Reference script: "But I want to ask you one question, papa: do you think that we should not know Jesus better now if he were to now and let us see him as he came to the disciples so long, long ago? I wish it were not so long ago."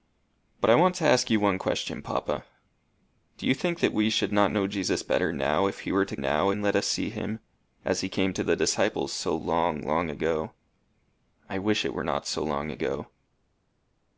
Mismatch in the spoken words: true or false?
false